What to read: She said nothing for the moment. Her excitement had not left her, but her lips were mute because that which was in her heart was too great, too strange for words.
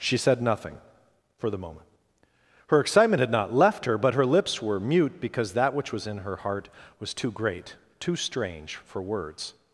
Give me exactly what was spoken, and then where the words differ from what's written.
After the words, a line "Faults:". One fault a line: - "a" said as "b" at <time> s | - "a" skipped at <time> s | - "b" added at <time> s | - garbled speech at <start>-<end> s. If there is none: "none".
She said nothing for the moment. Her excitement had not left her, but her lips were mute because that which was in her heart was too great, too strange for words.
Faults:
none